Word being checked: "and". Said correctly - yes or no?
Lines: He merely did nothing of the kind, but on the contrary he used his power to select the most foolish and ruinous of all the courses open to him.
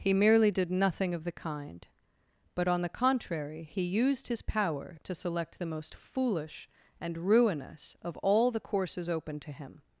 yes